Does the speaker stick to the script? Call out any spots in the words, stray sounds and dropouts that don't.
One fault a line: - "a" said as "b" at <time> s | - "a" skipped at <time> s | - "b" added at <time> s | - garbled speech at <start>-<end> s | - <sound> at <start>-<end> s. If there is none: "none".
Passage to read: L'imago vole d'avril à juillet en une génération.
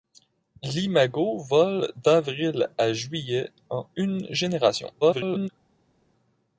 - garbled speech at 5.0-5.5 s